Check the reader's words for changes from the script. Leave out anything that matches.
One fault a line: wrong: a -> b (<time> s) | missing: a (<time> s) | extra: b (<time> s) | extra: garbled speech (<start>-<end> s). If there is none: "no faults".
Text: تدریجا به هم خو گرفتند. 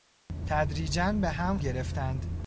missing: خو (1.6 s)